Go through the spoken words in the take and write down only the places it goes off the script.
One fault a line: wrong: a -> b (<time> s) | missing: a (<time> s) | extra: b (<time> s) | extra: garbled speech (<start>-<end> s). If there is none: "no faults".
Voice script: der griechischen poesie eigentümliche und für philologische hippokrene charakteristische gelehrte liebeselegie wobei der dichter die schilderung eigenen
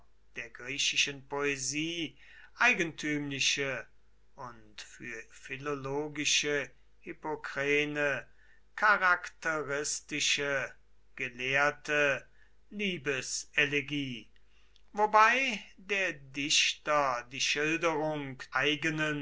no faults